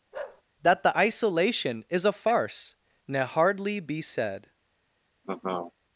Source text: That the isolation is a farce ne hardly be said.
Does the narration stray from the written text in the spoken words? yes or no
no